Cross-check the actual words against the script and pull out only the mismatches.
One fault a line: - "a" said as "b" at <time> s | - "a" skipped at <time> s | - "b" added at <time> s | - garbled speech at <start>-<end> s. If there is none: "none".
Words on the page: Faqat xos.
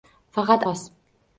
none